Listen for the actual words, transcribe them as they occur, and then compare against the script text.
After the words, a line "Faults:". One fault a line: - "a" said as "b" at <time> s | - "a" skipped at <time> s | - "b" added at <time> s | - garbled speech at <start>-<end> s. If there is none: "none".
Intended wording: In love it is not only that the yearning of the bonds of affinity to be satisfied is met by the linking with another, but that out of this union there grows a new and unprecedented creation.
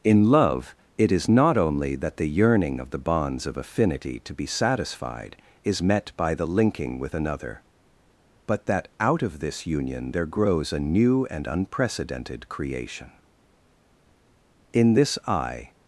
In love it is not only that the yearning of the bonds of affinity to be satisfied is met by the linking with another, but that out of this union there grows a new and unprecedented creation. In this I
Faults:
- "In this I" added at 14.7 s